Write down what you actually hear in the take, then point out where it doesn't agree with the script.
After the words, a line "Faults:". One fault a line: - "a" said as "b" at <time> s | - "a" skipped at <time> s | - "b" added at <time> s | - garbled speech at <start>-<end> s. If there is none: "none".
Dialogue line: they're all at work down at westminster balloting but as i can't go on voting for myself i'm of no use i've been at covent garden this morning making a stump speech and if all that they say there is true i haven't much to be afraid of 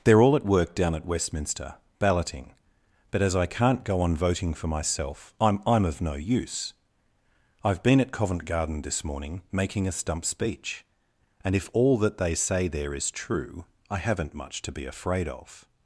they're all at work down at westminster balloting but as i can't go on voting for myself i'm i'm of no use i've been at covent garden this morning making a stump speech and if all that they say there is true i haven't much to be afraid of
Faults:
- "i'm" added at 5.7 s